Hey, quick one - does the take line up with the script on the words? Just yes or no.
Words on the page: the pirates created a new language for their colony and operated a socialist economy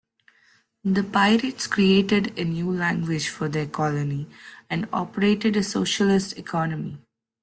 yes